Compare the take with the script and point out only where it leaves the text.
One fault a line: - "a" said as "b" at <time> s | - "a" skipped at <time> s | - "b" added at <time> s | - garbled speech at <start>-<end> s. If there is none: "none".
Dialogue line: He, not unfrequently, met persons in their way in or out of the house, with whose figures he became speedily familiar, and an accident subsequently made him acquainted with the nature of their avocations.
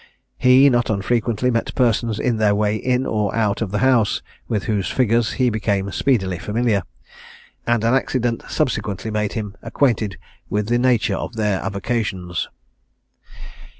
none